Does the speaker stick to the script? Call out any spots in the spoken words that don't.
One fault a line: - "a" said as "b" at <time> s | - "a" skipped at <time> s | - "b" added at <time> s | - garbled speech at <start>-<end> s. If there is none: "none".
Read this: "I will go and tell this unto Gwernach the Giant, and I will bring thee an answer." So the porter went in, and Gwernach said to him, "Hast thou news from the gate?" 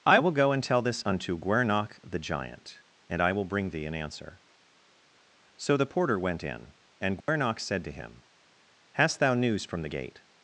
none